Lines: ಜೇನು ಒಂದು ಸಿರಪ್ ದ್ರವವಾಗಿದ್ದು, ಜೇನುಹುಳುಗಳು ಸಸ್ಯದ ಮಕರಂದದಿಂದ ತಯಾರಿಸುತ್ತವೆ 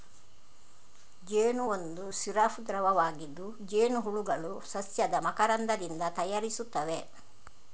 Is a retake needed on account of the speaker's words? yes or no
no